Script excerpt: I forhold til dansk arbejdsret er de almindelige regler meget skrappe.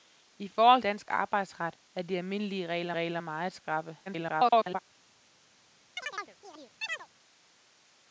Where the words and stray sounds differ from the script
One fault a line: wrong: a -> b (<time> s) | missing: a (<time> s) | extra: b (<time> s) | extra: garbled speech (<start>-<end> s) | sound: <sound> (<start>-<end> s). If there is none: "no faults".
missing: til (0.8 s)
extra: regler (2.9 s)
extra: garbled speech (4.1-4.8 s)
sound: chirp (6.0-7.1 s)